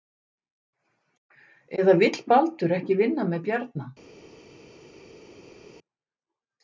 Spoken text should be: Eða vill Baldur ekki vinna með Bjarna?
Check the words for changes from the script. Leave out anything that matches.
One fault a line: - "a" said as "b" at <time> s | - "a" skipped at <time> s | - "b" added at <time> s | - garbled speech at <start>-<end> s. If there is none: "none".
none